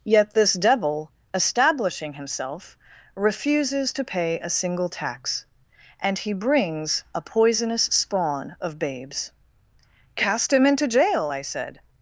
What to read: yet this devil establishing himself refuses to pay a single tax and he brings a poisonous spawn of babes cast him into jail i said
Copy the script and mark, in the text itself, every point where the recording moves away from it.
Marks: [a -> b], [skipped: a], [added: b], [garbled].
yet this devil establishing himself refuses to pay a single tax and he brings a poisonous spawn of babes cast him into jail i said